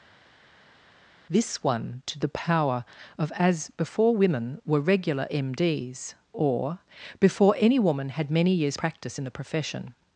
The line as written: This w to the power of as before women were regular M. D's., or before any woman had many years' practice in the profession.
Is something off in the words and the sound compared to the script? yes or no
yes